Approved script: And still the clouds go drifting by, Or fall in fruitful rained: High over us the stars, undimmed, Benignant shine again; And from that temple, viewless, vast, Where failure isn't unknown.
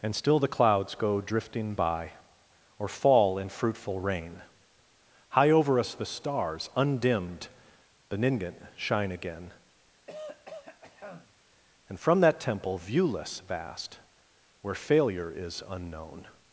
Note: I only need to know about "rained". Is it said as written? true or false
false